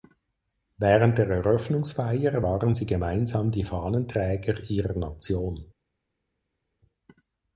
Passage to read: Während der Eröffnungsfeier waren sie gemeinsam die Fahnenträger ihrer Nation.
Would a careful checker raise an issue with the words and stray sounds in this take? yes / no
no